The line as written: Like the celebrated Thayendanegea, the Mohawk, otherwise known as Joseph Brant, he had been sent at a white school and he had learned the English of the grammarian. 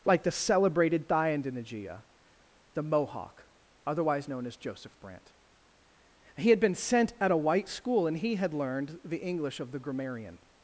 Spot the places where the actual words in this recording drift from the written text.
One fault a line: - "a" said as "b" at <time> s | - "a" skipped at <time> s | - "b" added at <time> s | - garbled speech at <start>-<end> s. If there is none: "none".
none